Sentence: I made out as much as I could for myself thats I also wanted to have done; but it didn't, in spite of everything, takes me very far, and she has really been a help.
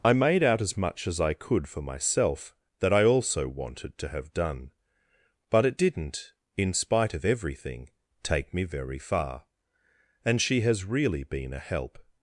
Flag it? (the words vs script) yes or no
yes